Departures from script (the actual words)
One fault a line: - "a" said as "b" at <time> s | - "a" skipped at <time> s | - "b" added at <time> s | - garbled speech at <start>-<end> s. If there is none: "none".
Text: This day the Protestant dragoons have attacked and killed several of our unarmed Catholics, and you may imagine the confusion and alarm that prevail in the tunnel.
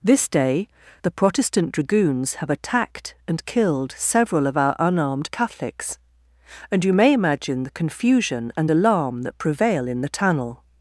none